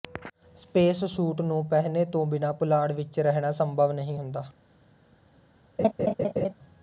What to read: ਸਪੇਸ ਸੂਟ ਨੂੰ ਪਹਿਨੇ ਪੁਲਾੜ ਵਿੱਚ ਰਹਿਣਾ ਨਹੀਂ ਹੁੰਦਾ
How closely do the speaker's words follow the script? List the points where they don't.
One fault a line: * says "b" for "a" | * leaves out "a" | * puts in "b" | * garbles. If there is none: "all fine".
* puts in "ਤੋਂ ਬਿਨਾਂ"
* puts in "ਸੰਭਵ"